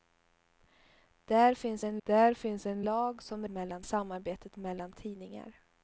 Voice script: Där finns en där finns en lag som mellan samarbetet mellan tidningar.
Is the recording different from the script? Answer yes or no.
no